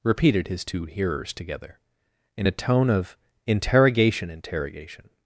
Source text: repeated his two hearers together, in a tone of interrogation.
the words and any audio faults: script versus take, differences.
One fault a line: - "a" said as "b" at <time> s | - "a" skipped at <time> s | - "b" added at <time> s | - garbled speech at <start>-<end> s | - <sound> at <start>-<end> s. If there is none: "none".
- "interrogation" added at 4.3 s